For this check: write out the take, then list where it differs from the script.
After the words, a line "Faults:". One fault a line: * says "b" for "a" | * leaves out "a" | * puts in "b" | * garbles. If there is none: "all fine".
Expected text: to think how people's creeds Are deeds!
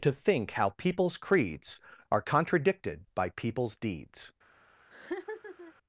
to think how people's creeds Are contradicted by people's deeds!
Faults:
* puts in "contradicted by people's"